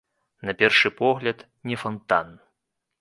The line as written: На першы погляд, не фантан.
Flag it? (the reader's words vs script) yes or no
no